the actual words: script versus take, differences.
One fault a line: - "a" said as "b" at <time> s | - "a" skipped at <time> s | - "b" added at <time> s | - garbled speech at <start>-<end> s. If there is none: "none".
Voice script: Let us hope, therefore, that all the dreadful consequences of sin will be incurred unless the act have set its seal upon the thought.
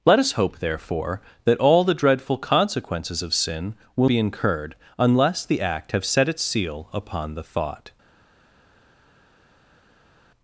none